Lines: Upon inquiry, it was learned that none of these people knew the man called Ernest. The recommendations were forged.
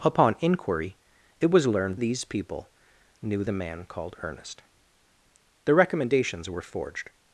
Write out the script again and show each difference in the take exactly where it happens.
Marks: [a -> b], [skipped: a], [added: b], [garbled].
Upon inquiry, it was learned [skipped: that none of] these people knew the man called Ernest. The recommendations were forged.